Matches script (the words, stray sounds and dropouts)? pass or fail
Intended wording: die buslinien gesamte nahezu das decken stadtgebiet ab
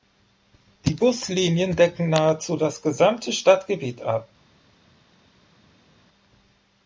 fail